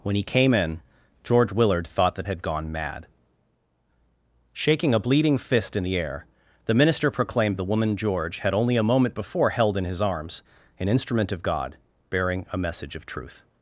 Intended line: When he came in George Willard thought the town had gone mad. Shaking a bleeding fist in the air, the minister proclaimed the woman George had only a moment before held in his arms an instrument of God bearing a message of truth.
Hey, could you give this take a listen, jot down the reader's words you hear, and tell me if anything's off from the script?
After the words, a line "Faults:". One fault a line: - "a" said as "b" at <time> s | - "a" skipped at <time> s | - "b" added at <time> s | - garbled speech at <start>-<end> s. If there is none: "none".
When he came in George Willard thought the had gone mad. Shaking a bleeding fist in the air, the minister proclaimed the woman George had only a moment before held in his arms an instrument of God bearing a message of truth.
Faults:
- "town" skipped at 2.2 s